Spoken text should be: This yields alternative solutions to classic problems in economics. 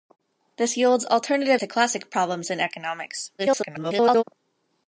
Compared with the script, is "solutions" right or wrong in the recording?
wrong